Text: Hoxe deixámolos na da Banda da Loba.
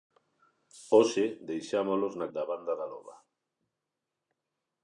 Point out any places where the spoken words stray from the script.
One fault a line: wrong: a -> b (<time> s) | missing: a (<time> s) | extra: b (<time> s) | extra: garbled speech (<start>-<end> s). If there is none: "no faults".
no faults